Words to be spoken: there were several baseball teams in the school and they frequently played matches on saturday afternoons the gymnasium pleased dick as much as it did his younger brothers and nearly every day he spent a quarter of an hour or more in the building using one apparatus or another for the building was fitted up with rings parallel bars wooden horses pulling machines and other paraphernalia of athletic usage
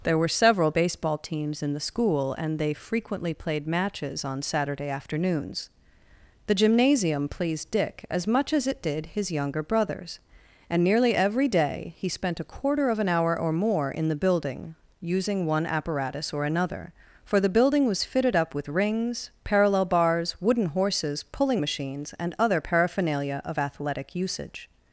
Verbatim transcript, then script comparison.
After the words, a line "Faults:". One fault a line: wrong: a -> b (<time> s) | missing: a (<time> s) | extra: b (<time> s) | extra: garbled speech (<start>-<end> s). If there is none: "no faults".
there were several baseball teams in the school and they frequently played matches on saturday afternoons the gymnasium pleased dick as much as it did his younger brothers and nearly every day he spent a quarter of an hour or more in the building using one apparatus or another for the building was fitted up with rings parallel bars wooden horses pulling machines and other paraphernalia of athletic usage
Faults:
no faults